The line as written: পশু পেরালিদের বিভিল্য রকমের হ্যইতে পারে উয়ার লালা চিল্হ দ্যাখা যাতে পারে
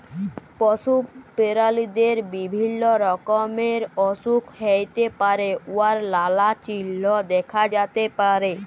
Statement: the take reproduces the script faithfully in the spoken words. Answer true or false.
false